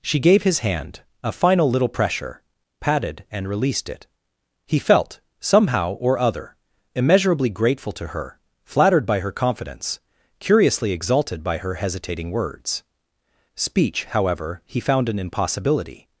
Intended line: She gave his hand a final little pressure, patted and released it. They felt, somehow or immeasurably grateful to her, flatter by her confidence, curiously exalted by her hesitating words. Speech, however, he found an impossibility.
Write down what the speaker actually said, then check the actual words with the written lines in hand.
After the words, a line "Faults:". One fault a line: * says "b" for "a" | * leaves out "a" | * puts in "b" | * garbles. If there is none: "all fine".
She gave his hand a final little pressure, patted and released it. He felt, somehow or other, immeasurably grateful to her, flattered by her confidence, curiously exalted by her hesitating words. Speech, however, he found an impossibility.
Faults:
* says "He" for "They"
* puts in "other"
* says "flattered" for "flatter"